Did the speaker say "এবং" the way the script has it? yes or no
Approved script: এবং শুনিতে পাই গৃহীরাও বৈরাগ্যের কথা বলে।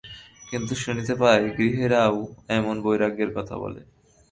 no